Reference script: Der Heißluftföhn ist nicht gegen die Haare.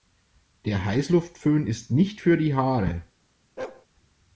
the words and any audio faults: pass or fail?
fail